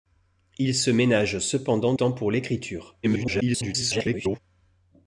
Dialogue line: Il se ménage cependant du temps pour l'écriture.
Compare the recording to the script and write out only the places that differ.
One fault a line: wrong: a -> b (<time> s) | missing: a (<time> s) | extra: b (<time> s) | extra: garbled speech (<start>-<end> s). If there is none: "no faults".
missing: du (1.9 s)
extra: garbled speech (3.0-4.4 s)